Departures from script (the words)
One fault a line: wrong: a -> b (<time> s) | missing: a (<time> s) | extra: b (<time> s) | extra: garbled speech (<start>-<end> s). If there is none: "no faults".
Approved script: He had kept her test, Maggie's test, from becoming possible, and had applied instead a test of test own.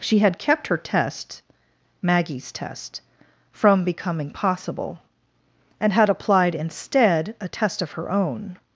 wrong: He -> She (0.0 s)
wrong: test -> her (7.9 s)